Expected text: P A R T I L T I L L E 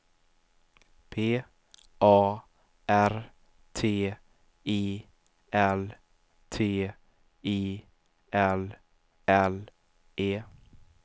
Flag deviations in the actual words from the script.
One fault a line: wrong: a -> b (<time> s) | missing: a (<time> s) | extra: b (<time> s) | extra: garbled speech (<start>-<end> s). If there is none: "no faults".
no faults